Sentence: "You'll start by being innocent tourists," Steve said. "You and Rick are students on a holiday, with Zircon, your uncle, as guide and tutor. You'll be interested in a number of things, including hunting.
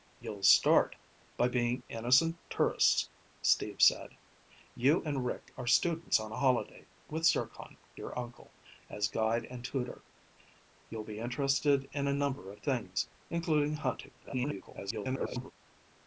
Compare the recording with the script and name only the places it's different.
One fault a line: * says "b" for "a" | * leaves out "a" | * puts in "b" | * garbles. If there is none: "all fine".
* garbles